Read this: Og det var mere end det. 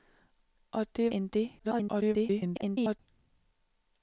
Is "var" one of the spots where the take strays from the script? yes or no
yes